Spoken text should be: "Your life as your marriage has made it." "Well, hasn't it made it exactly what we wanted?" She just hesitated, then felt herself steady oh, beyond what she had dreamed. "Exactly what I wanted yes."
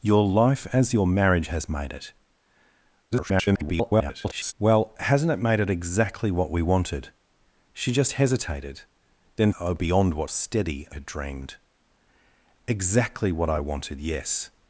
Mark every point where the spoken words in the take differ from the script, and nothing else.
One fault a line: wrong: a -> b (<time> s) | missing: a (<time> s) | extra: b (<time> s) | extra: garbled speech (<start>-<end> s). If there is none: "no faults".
extra: garbled speech (3.1-4.5 s)
missing: felt herself steady (9.5 s)
wrong: she -> steady (10.3 s)